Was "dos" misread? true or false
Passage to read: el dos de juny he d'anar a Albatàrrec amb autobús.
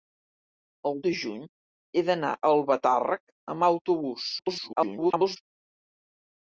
true